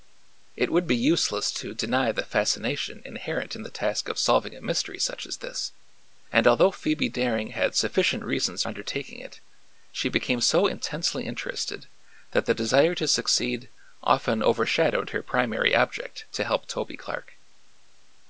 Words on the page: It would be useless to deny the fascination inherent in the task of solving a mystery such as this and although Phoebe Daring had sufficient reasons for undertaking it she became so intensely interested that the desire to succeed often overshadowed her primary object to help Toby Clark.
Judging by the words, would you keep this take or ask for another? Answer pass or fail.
fail